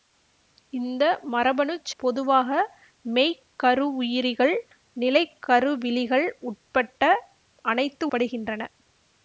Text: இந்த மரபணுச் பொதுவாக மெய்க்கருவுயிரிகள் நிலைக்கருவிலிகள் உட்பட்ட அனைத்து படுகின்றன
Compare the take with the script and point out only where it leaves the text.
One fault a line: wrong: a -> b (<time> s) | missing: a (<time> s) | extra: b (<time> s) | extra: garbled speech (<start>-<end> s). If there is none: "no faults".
no faults